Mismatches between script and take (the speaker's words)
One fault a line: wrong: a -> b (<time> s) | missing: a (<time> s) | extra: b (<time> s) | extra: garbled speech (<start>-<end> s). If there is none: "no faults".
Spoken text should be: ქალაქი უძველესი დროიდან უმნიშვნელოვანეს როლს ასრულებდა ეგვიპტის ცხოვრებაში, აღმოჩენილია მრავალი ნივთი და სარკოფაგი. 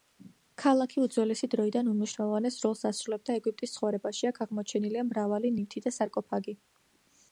extra: აქ (4.3 s)